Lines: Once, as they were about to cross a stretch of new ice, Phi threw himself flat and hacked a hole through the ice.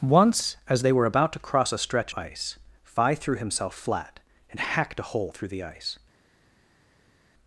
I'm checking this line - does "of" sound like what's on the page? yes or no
no